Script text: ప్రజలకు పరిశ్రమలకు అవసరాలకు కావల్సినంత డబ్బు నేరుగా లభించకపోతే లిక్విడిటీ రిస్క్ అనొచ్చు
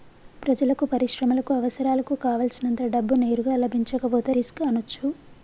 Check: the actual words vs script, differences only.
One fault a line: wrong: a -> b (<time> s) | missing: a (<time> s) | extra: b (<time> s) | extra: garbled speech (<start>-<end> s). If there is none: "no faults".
missing: లిక్విడిటీ (4.3 s)